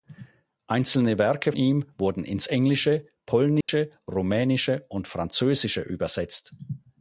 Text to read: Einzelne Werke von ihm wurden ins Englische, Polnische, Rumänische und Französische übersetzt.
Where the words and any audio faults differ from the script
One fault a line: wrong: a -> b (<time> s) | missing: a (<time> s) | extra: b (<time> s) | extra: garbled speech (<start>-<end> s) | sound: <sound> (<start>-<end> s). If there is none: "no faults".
missing: von (1.5 s)
sound: dropout (3.6-3.7 s)